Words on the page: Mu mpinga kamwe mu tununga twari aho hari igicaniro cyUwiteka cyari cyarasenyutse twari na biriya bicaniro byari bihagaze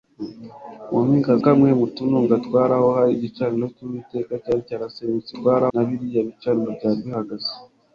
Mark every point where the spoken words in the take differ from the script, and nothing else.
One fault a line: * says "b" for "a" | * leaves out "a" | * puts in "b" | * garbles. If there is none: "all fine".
all fine